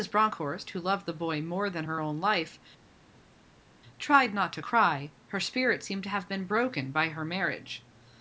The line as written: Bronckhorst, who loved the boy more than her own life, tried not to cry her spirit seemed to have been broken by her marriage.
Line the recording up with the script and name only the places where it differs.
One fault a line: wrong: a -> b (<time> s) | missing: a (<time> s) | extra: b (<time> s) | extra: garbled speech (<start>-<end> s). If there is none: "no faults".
no faults